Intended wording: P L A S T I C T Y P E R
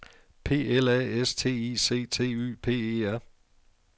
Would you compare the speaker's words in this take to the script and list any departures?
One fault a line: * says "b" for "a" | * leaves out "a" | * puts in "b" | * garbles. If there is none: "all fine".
all fine